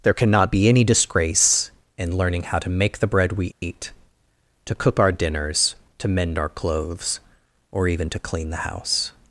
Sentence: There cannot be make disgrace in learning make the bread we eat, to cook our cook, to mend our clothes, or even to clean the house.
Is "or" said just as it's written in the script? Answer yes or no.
yes